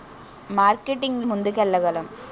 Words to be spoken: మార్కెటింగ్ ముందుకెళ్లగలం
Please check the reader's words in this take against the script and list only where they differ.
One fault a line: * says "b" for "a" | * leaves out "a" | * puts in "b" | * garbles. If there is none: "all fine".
all fine